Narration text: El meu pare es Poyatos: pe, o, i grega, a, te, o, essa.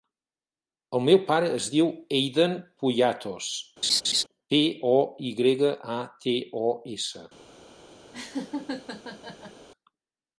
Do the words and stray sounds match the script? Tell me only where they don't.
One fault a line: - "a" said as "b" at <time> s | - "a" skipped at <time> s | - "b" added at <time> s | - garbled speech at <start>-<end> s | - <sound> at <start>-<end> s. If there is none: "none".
- "diu Eiden" added at 1.7 s
- laugh at 3.8-4.2 s
- laugh at 8.1-9.7 s